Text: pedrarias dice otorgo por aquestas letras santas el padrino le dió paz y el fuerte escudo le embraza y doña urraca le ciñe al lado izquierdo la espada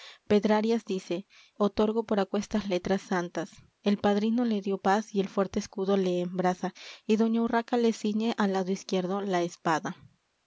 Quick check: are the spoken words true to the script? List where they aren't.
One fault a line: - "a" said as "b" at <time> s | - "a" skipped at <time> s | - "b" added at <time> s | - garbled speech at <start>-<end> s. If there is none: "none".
none